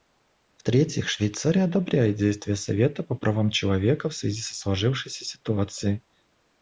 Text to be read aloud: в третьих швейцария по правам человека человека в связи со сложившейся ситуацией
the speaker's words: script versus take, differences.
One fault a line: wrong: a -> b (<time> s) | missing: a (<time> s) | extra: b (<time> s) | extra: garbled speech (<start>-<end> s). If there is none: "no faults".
extra: одобряет действия совета (1.6 s)
missing: человека (4.1 s)